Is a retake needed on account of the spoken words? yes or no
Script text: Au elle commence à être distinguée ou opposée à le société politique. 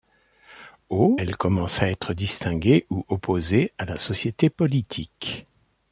yes